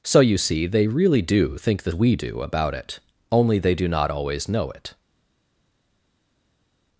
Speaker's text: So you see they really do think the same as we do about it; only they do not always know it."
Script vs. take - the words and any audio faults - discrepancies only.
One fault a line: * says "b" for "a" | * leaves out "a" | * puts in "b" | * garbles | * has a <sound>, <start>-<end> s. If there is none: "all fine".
* leaves out "same as"